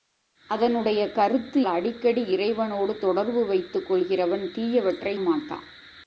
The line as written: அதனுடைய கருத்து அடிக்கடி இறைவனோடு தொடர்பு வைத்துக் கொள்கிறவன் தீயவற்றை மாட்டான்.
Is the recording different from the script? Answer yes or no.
no